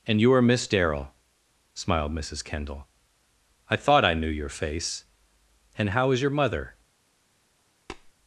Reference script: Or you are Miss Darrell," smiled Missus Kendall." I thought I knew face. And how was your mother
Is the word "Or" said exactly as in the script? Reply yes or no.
no